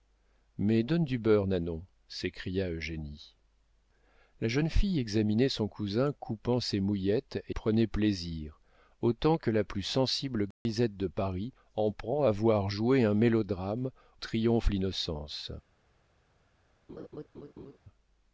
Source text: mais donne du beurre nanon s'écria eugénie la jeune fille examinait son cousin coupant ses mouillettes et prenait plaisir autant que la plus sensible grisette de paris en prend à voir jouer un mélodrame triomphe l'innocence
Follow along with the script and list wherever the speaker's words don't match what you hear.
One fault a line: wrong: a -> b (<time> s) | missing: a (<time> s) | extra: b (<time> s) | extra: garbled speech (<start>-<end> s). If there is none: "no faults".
no faults